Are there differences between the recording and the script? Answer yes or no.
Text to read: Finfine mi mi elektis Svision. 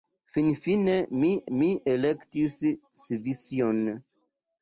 no